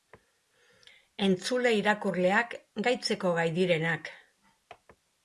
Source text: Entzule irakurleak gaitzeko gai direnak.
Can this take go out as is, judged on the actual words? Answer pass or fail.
pass